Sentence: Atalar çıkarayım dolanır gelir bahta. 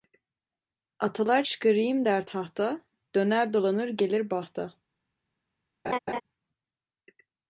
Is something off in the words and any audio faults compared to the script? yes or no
yes